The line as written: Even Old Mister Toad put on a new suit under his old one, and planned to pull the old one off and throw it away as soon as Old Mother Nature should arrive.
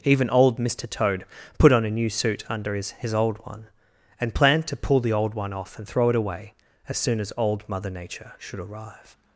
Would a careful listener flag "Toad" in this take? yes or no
no